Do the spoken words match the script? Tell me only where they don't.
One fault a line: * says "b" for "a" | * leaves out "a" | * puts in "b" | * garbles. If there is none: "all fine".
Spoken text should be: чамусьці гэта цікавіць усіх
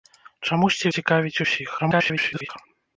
* leaves out "гэта"
* garbles